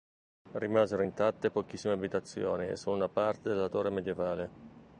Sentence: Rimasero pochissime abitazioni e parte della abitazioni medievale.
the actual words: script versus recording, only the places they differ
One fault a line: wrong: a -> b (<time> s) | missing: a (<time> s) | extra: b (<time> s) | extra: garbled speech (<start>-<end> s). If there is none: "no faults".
extra: intatte (1.0 s)
extra: solo una (2.8 s)
wrong: abitazioni -> torre (3.6 s)